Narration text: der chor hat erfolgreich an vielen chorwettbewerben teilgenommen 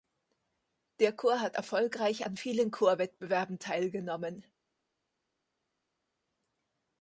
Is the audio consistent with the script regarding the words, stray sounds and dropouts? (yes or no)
yes